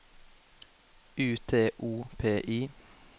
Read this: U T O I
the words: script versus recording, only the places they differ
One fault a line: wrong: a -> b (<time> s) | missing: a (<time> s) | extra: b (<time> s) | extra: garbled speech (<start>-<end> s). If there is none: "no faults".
extra: P (2.2 s)